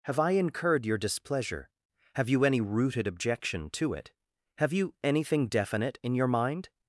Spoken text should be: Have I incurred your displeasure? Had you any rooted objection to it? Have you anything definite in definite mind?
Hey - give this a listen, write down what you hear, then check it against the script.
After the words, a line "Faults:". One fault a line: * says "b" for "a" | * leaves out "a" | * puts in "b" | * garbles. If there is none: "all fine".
Have I incurred your displeasure? Have you any rooted objection to it? Have you anything definite in your mind?
Faults:
* says "Have" for "Had"
* says "your" for "definite"